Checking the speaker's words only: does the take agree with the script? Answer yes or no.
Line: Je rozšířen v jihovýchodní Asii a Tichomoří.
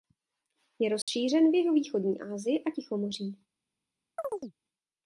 yes